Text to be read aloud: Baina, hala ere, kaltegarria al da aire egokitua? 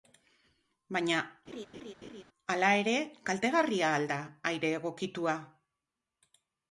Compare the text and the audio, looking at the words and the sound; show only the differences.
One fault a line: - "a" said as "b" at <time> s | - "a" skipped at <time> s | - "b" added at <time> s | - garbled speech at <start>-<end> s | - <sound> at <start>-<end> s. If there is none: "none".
- laugh at 1.5-2.2 s